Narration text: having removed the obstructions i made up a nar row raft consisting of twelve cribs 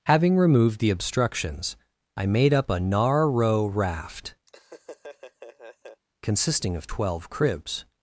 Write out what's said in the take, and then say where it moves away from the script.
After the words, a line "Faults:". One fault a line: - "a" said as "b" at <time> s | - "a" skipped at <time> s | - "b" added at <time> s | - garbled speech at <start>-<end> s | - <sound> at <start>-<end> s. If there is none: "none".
having removed the obstructions i made up a nar row raft consisting of twelve cribs
Faults:
- laugh at 4.5-6.0 s